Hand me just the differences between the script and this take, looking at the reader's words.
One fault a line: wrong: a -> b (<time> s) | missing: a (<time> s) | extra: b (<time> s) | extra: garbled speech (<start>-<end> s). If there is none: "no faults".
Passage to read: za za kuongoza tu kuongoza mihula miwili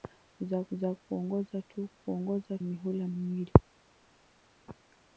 no faults